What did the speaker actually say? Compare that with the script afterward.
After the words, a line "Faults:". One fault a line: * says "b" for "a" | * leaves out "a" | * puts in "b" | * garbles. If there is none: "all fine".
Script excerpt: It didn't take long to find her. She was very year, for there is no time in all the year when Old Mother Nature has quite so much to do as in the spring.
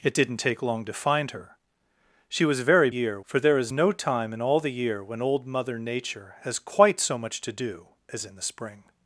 It didn't take long to find her. She was very year, for there is no time in all the year when Old Mother Nature has quite so much to do as in the spring.
Faults:
all fine